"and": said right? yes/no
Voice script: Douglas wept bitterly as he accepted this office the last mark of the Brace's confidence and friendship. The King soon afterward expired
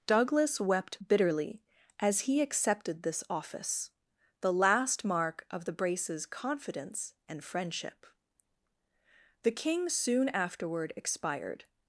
yes